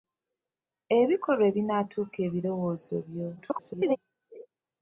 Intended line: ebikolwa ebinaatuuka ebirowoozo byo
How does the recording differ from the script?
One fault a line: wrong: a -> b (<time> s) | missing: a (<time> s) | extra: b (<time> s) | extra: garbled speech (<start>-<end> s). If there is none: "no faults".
extra: garbled speech (3.4-4.0 s)